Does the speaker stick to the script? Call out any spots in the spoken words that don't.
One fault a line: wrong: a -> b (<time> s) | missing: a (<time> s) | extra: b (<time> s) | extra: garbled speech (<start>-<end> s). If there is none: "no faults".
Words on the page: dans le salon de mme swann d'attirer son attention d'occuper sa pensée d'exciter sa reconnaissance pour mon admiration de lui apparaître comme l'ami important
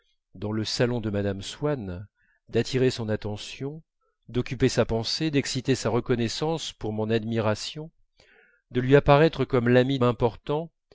no faults